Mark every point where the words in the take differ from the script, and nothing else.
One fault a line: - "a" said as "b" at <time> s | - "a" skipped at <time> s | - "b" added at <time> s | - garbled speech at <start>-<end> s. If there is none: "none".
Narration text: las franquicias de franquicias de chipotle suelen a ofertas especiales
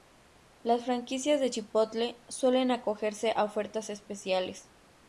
- "franquicias de" skipped at 1.5 s
- "acogerse" added at 2.7 s